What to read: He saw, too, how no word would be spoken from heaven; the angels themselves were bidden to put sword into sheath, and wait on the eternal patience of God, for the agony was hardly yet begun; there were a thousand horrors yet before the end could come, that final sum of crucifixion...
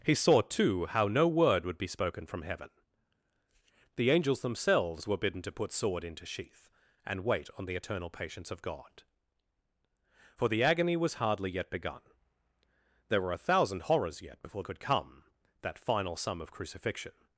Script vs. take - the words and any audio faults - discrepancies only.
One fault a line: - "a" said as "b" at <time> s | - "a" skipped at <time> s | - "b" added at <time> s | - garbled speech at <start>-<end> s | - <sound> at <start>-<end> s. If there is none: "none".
- "the end" skipped at 14.6 s